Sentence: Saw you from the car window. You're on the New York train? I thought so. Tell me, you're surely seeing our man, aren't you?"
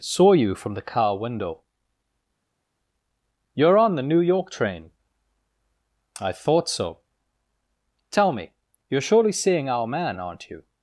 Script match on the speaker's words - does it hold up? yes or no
yes